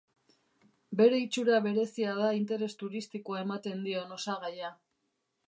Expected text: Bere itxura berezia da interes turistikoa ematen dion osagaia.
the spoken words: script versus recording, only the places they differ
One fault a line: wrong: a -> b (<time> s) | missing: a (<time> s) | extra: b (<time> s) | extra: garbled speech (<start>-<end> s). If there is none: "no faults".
no faults